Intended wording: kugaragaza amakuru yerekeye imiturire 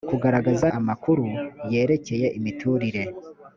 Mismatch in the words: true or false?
false